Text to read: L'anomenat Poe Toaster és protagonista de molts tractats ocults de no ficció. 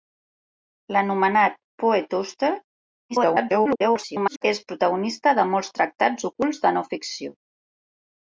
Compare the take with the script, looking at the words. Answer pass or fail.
fail